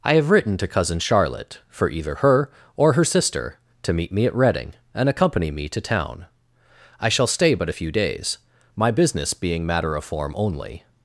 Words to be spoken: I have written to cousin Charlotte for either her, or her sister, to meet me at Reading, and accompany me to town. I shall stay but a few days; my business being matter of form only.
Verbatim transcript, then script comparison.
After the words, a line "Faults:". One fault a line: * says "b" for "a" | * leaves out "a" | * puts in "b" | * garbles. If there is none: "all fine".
I have written to cousin Charlotte for either her, or her sister, to meet me at Reading, and accompany me to town. I shall stay but a few days; my business being matter of form only.
Faults:
all fine